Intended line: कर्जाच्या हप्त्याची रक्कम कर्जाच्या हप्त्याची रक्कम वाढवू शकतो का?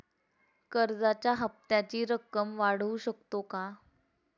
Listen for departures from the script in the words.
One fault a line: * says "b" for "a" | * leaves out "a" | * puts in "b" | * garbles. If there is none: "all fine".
* leaves out "कर्जाच्या हप्त्याची रक्कम"